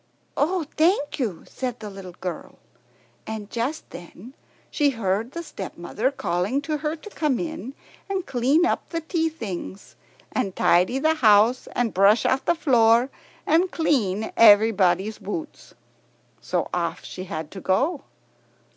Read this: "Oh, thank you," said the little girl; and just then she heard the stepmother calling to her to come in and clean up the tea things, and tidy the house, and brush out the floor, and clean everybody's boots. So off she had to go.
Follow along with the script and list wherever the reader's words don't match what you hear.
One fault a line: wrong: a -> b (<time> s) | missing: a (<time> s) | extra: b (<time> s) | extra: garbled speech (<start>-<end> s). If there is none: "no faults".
no faults